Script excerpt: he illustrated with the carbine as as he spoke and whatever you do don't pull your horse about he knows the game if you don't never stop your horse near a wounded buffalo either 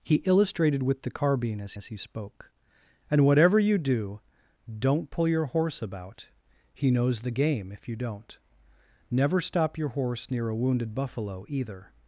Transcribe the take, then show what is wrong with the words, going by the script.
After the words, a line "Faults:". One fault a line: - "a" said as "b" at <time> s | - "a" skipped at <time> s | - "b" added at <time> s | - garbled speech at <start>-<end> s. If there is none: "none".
he illustrated with the carbine as as he spoke and whatever you do don't pull your horse about he knows the game if you don't never stop your horse near a wounded buffalo either
Faults:
none